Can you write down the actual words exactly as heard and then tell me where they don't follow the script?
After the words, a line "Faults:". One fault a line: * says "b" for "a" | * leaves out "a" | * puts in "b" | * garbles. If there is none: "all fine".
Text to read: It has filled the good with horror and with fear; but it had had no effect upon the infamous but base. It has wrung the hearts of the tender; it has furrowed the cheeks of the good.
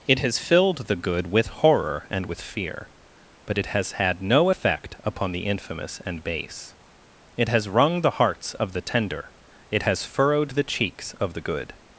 It has filled the good with horror and with fear; but it has had no effect upon the infamous and base. It has wrung the hearts of the tender; it has furrowed the cheeks of the good.
Faults:
* says "has" for "had"
* says "and" for "but"